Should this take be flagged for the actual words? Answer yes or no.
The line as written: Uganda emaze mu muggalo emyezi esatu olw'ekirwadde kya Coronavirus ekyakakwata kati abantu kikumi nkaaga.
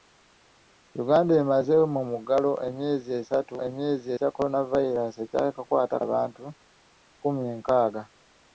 yes